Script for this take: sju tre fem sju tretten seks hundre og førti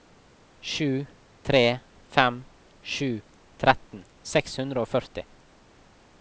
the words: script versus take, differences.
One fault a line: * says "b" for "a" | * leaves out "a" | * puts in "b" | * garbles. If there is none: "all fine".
all fine